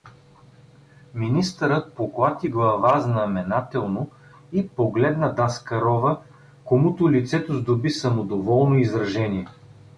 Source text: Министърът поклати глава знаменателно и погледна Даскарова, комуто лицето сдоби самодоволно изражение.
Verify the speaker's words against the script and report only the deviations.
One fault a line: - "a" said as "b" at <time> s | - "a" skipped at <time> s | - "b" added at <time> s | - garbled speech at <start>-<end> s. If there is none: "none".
none